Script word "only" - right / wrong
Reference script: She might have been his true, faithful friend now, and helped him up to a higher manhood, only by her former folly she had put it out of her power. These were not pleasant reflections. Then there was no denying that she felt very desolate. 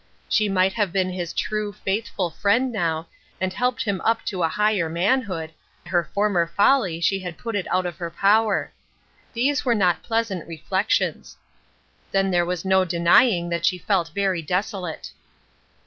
wrong